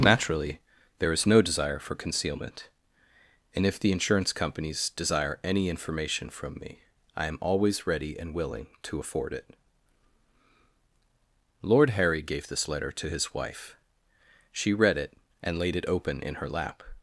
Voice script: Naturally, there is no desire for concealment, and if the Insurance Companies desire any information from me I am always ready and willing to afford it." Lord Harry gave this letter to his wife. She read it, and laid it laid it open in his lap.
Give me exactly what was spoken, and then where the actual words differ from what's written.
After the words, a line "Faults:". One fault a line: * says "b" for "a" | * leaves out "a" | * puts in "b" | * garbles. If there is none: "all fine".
Naturally, there is no desire for concealment, and if the Insurance Companies desire any information from me I am always ready and willing to afford it." Lord Harry gave this letter to his wife. She read it, and laid it open in her lap.
Faults:
* leaves out "laid it"
* says "her" for "his"